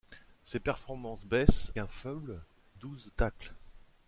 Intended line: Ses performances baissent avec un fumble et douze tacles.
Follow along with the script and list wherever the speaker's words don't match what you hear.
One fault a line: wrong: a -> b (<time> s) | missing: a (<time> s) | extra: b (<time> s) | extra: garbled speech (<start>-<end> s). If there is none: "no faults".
missing: avec (1.7 s)
missing: et (2.4 s)